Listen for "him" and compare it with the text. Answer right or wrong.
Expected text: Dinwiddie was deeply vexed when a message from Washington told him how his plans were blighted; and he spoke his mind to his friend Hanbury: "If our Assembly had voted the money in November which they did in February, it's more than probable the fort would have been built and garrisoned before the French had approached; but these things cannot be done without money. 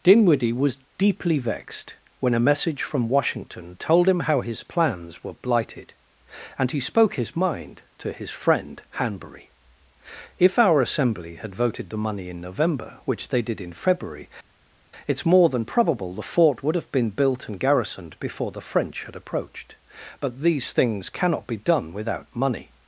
right